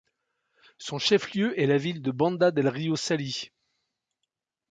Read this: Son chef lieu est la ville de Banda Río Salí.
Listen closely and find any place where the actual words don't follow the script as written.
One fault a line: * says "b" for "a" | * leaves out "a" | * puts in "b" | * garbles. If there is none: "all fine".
* puts in "del"